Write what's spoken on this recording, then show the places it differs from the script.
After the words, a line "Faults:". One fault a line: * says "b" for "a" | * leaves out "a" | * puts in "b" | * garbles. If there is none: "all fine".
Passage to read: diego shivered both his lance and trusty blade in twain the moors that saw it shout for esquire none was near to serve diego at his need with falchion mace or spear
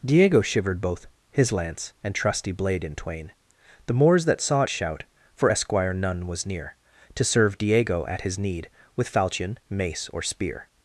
diego shivered both his lance and trusty blade in twain the moors that saw it shout for esquire none was near to serve diego at his need with falchion mace or spear
Faults:
all fine